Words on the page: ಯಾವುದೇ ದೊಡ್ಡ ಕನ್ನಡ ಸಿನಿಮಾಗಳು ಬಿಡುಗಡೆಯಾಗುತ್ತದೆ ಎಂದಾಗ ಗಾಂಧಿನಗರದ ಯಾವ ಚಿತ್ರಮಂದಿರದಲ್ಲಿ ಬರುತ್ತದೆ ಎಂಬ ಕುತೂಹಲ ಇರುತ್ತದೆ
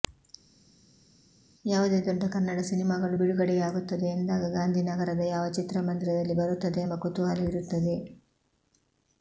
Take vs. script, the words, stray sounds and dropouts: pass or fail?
pass